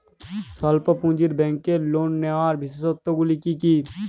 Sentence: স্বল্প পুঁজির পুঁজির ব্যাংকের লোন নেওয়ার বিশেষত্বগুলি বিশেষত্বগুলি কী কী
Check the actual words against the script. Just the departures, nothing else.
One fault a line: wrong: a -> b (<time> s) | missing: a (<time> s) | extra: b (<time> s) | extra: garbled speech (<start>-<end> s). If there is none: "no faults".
missing: পুঁজির (1.3 s)
missing: বিশেষত্বগুলি (3.4 s)